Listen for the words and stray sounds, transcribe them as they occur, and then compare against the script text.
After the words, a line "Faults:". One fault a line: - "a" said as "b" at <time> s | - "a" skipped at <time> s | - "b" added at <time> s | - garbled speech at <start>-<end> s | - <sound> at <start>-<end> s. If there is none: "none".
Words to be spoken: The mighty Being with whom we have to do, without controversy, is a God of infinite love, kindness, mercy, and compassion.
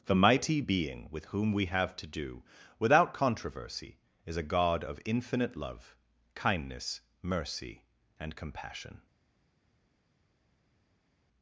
The mighty Being with whom we have to do, without controversy, is a God of infinite love, kindness, mercy, and compassion.
Faults:
none